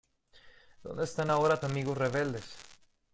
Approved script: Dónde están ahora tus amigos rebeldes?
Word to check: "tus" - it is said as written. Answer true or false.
false